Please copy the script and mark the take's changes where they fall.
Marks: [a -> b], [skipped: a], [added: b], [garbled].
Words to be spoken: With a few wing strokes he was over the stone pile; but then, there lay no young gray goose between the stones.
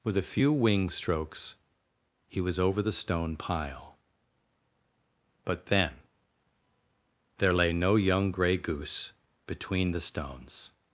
With a few wing strokes he was over the stone pile; but then, there lay no young gray goose between the stones.